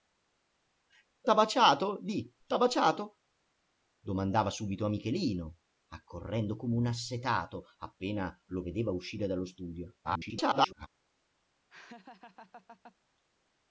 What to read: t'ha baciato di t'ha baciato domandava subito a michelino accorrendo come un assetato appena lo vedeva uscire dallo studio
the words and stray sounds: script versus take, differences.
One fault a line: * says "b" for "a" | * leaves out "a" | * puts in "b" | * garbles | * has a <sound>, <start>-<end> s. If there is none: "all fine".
* garbles
* has a laugh, 11.7-13.0 s